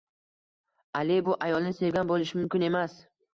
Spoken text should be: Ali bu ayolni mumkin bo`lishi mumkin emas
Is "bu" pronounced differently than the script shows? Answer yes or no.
no